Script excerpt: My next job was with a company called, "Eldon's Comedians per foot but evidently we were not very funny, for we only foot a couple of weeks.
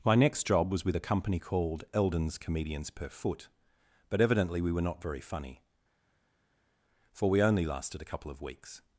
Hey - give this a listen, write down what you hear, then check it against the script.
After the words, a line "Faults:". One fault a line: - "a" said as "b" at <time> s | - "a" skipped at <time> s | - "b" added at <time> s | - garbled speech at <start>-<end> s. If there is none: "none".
My next job was with a company called, "Eldon's Comedians per foot but evidently we were not very funny, for we only lasted a couple of weeks.
Faults:
- "foot" said as "lasted" at 7.7 s